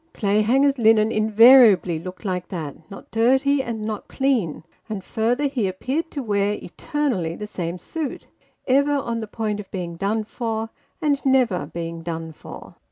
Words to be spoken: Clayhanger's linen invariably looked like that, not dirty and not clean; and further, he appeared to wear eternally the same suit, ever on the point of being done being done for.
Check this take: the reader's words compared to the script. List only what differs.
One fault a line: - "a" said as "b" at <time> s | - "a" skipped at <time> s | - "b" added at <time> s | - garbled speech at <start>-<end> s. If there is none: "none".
- "for and never" added at 10.2 s